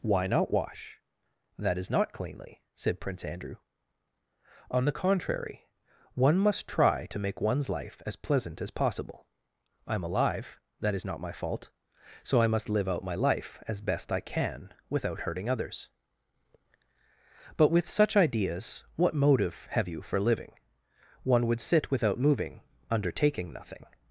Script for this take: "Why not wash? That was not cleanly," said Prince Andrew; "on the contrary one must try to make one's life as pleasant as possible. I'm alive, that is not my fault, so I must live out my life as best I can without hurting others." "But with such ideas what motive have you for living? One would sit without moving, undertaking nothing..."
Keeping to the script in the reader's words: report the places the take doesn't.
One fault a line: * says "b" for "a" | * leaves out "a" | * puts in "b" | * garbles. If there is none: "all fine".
* says "is" for "was"